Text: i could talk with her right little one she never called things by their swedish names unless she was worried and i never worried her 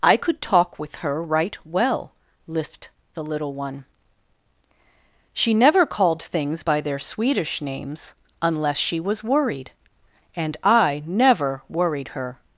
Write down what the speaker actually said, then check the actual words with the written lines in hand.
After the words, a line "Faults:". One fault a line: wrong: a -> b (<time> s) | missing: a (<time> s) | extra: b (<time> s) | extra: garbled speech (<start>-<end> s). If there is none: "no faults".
i could talk with her right well lisped the little one she never called things by their swedish names unless she was worried and i never worried her
Faults:
extra: well lisped the (1.6 s)